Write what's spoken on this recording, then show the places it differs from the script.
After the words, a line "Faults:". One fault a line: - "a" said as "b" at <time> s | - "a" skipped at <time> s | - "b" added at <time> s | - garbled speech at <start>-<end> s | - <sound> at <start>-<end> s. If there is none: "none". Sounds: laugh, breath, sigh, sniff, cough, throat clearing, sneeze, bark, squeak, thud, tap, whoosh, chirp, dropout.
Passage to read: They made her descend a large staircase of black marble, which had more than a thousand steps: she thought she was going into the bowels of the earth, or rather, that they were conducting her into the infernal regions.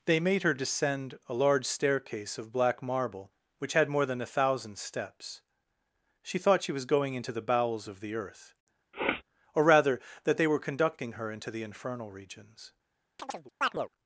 They made her descend a large staircase of black marble, which had more than a thousand steps: she thought she was going into the bowels of the earth, or rather, that they were conducting her into the infernal regions.
Faults:
- sniff at 8.9-9.2 s
- chirp at 13.2-13.9 s